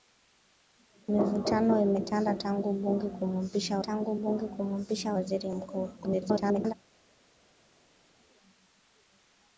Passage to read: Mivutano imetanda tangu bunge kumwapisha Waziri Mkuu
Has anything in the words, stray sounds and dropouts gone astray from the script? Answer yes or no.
yes